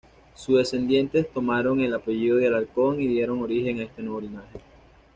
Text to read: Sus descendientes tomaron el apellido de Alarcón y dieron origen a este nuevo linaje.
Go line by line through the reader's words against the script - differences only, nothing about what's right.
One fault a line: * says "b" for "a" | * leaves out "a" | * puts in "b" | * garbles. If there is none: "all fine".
all fine